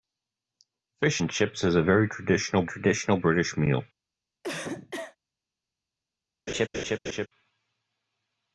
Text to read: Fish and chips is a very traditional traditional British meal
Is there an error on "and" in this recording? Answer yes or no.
no